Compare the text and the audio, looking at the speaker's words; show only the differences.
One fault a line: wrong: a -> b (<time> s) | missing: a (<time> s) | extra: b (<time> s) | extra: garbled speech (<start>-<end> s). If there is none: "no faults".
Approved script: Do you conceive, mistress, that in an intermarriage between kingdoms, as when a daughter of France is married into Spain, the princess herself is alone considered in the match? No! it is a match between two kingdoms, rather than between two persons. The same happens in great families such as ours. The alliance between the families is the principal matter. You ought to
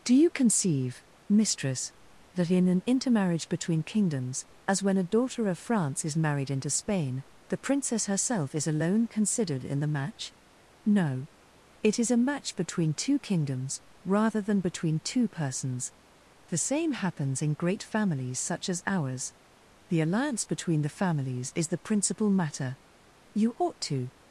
no faults